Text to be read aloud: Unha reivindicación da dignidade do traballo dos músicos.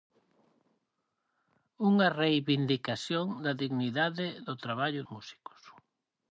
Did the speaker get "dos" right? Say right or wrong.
wrong